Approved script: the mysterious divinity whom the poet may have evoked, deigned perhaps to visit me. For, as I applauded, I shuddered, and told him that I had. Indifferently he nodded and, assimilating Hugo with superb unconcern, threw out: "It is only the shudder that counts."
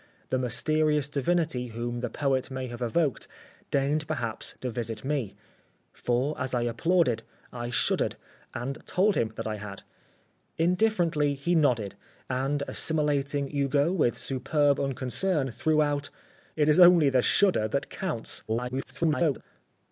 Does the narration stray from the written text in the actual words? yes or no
yes